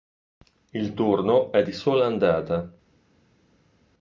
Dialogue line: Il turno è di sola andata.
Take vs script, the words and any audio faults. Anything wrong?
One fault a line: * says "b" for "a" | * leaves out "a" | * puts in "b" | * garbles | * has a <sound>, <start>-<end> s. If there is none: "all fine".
all fine